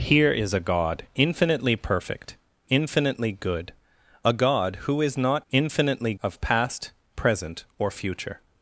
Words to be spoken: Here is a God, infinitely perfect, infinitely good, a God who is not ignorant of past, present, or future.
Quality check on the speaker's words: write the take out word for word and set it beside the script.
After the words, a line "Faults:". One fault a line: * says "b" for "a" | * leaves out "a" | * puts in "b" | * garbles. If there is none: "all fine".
Here is a God, infinitely perfect, infinitely good, a God who is not infinitely of past, present, or future.
Faults:
* says "infinitely" for "ignorant"